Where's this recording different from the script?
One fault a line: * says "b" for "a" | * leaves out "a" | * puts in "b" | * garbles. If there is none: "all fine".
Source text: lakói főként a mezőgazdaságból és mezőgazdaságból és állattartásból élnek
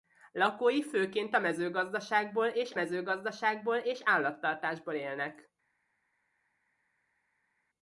all fine